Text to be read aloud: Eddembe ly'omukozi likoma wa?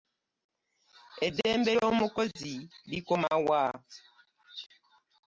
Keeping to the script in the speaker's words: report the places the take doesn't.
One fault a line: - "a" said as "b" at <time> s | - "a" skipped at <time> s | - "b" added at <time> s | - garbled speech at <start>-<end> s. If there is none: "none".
none